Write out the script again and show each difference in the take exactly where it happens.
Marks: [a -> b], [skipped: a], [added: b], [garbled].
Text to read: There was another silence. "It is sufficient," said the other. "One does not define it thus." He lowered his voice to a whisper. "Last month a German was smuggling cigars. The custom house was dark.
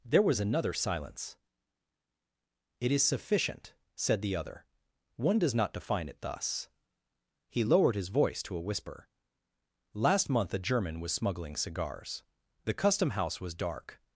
There was another silence. "It is sufficient," said the other. "One does not define it thus." He lowered his voice to a whisper. "Last month a German was smuggling cigars. The custom house was dark.